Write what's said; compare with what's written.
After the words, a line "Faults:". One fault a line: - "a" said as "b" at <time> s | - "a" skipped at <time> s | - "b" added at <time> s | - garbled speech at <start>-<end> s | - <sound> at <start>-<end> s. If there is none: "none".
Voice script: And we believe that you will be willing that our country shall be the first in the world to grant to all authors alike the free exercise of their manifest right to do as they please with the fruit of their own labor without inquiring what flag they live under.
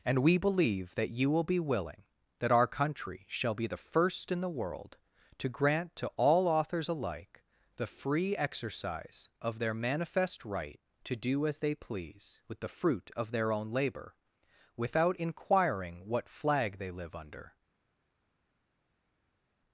And we believe that you will be willing that our country shall be the first in the world to grant to all authors alike the free exercise of their manifest right to do as they please with the fruit of their own labor without inquiring what flag they live under.
Faults:
none